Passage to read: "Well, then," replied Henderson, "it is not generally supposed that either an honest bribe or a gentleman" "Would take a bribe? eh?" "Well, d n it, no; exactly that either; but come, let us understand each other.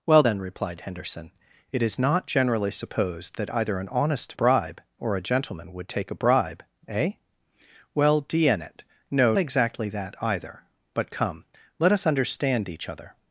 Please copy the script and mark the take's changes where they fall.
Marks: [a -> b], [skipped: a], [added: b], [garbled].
"Well, then," replied Henderson, "it is not generally supposed that either an honest bribe or a gentleman" "Would take a bribe? eh?" "Well, d n it, no; exactly that either; but come, let us understand each other.